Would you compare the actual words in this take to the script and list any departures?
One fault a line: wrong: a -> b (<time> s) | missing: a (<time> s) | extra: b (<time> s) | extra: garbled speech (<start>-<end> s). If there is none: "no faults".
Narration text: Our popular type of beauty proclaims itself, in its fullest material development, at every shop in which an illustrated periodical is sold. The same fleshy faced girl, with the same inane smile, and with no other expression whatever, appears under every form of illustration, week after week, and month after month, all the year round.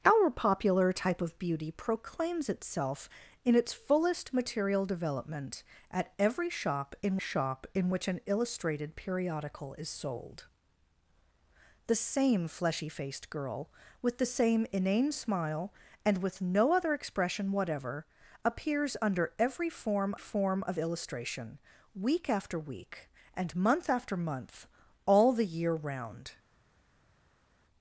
extra: shop in (7.2 s)
extra: form (20.2 s)